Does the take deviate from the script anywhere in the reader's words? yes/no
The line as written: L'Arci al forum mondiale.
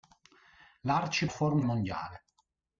no